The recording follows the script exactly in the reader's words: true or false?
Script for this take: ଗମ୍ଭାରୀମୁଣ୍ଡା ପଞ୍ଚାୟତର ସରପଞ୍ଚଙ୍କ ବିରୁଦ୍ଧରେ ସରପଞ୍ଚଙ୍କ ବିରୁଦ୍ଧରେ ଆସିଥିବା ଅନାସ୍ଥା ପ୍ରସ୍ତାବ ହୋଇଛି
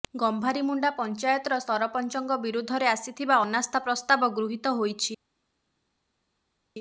false